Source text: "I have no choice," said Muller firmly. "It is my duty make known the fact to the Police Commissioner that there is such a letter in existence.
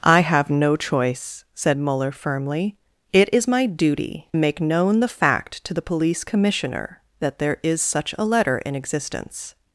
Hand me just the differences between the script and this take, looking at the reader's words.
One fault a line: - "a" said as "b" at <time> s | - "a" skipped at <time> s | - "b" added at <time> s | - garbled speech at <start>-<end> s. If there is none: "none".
none